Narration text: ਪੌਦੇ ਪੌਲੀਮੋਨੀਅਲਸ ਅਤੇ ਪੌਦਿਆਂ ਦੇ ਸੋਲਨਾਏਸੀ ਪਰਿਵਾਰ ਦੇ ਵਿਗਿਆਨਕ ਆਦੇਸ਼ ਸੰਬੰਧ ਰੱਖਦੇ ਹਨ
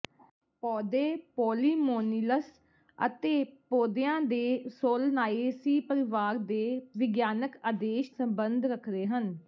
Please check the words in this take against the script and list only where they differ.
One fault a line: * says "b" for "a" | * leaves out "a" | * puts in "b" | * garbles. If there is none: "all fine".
all fine